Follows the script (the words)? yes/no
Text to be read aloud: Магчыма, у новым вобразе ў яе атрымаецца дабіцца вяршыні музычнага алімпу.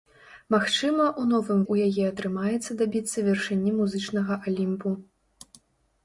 no